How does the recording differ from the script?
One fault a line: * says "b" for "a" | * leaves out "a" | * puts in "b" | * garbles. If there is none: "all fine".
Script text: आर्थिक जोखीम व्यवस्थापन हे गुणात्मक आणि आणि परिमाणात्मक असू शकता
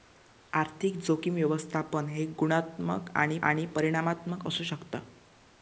all fine